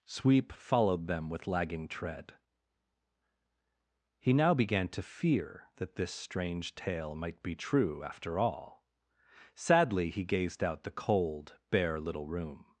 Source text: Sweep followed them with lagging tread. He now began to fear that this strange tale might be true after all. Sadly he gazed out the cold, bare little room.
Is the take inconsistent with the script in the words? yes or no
no